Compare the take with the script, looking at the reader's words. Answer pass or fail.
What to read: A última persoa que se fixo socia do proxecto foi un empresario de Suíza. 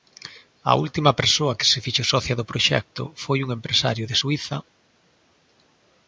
pass